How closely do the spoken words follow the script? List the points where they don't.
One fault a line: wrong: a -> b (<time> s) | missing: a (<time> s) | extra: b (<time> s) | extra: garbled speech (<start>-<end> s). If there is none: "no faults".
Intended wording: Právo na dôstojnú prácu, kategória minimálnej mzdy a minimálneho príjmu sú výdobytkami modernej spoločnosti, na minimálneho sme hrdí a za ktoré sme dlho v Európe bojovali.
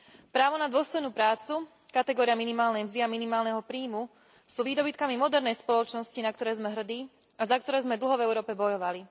wrong: minimálneho -> ktoré (6.3 s)